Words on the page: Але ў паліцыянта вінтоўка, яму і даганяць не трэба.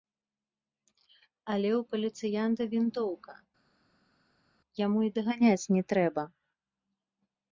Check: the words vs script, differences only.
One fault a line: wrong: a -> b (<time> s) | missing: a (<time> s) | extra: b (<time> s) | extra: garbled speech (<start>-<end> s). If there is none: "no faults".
no faults